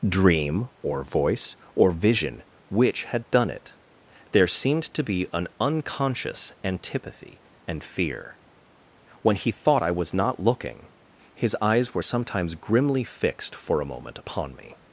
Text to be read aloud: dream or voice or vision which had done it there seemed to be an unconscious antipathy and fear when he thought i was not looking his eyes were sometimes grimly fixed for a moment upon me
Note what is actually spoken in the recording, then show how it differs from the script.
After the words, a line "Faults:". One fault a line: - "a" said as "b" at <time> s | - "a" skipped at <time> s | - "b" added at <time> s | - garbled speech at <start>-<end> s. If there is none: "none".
dream or voice or vision which had done it there seemed to be an unconscious antipathy and fear when he thought i was not looking his eyes were sometimes grimly fixed for a moment upon me
Faults:
none